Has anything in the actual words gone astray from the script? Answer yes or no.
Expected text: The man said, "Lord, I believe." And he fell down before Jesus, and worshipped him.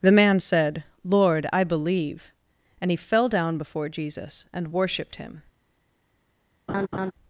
no